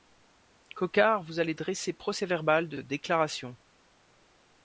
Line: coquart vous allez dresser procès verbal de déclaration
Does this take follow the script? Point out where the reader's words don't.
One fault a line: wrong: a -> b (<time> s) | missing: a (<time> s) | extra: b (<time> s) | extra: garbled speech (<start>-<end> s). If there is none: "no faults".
no faults